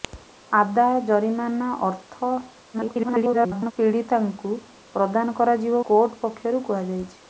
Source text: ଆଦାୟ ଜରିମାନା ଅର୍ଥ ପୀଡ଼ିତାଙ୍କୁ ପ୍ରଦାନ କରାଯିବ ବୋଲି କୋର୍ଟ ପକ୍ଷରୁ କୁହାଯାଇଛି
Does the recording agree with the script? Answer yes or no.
no